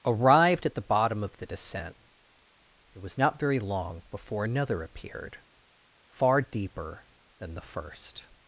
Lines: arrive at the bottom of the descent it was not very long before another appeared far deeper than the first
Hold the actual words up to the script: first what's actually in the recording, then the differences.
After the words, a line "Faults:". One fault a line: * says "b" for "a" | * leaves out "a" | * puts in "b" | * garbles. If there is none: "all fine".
arrived at the bottom of the descent it was not very long before another appeared far deeper than the first
Faults:
* says "arrived" for "arrive"